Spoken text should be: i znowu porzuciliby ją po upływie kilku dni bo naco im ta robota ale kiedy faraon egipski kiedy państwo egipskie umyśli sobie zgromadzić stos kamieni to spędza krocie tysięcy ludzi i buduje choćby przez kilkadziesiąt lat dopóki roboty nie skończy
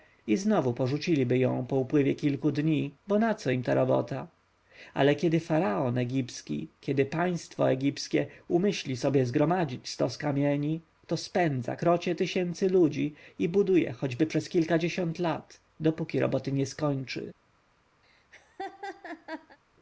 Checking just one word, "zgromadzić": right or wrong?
right